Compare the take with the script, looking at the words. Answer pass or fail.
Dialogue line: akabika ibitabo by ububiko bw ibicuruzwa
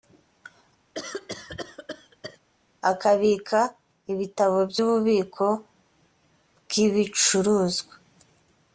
pass